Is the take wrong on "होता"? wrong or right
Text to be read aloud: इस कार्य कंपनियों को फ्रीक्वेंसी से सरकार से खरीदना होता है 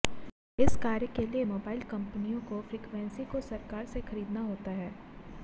right